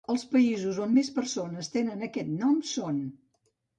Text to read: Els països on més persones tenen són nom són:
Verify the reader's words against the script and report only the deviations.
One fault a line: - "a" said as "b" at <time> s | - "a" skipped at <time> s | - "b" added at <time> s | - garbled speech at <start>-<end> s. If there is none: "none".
- "són" said as "aquest" at 2.1 s